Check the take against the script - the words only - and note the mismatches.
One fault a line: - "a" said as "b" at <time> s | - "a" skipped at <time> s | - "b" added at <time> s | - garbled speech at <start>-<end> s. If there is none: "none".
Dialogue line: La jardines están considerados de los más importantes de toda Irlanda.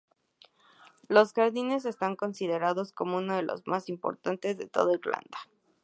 - "La" said as "Los" at 1.1 s
- "como uno" added at 2.9 s